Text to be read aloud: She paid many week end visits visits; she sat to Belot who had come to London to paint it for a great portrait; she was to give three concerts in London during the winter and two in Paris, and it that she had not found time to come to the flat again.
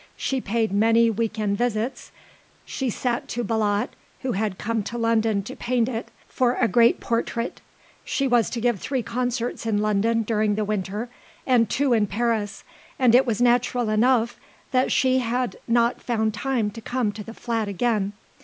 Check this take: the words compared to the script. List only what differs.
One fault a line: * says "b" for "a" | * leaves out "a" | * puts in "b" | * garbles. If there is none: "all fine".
* leaves out "visits"
* puts in "was natural enough"